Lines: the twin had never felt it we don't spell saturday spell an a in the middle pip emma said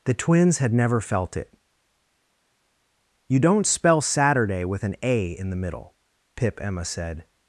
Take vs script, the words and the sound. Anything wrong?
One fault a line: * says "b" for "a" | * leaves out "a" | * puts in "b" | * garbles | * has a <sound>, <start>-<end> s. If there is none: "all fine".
* says "twins" for "twin"
* says "you" for "we"
* says "with" for "spell"